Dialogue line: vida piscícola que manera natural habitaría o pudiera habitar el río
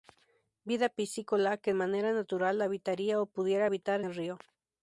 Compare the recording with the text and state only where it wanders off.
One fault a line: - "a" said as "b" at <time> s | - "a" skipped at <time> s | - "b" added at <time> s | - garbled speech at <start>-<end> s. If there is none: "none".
none